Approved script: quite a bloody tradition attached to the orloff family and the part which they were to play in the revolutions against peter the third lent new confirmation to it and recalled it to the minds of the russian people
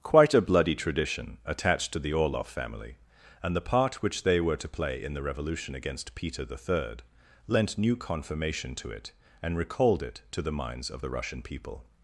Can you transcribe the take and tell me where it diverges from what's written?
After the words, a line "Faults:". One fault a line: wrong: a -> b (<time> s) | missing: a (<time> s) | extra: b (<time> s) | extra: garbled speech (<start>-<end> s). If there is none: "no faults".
quite a bloody tradition attached to the orloff family and the part which they were to play in the revolution against peter the third lent new confirmation to it and recalled it to the minds of the russian people
Faults:
wrong: revolutions -> revolution (5.2 s)